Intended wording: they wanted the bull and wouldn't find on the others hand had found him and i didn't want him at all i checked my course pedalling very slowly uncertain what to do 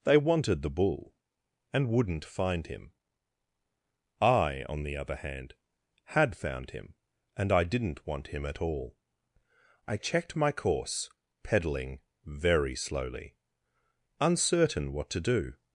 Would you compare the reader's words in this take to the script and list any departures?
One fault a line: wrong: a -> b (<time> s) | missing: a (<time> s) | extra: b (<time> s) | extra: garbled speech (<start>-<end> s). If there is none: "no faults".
extra: him i (2.7 s)
wrong: others -> other (5.0 s)